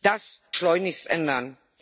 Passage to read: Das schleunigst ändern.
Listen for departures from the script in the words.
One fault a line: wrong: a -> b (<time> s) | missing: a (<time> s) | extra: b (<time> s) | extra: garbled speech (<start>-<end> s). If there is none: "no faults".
no faults